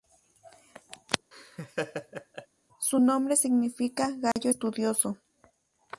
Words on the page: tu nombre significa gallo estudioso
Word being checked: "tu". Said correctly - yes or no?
no